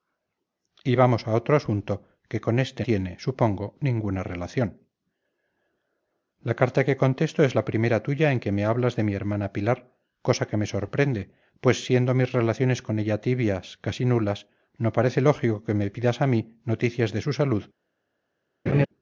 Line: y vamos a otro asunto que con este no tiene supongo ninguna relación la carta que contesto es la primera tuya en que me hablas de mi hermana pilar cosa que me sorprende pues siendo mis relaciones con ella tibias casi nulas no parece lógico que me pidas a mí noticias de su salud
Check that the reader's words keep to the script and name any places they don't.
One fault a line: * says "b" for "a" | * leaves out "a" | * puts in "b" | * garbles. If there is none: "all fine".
* leaves out "no"